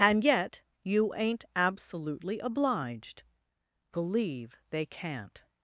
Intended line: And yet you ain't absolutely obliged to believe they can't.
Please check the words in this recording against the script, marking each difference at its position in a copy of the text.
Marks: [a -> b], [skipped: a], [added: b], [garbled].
And yet you ain't absolutely obliged [skipped: to] believe they can't.